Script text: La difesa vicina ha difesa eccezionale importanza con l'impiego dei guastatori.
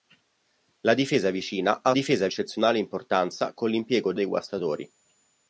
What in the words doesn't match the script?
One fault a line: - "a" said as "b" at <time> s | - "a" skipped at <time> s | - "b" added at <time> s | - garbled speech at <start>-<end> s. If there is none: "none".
none